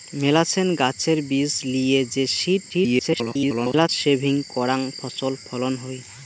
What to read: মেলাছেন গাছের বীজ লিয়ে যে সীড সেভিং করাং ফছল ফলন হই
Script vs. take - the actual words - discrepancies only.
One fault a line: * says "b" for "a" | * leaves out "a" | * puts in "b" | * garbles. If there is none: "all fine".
* garbles